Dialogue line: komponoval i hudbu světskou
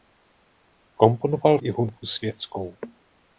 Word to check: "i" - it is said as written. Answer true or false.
true